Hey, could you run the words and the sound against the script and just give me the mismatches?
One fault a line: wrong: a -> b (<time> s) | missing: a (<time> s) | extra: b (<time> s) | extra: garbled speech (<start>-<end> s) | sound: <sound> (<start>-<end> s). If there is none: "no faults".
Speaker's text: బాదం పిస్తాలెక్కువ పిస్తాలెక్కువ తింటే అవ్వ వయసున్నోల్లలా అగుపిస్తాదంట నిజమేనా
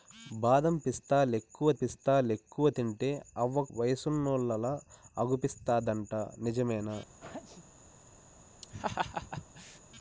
sound: sneeze (7.2-7.7 s)
sound: laugh (8.6-9.8 s)